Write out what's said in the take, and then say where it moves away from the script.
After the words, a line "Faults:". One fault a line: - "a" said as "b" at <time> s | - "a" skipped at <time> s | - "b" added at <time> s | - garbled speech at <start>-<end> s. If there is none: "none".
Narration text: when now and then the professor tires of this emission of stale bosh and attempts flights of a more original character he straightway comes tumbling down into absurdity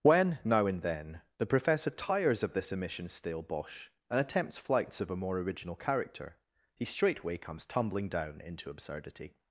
when now and then the professor tires of this emission stale bosh and attempts flights of a more original character he straightway comes tumbling down into absurdity
Faults:
- "of" skipped at 3.1 s